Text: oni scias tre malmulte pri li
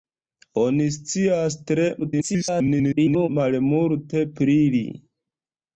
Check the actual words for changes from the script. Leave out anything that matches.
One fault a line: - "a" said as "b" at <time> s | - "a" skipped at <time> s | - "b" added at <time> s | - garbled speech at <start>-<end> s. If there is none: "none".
- garbled speech at 2.0-3.3 s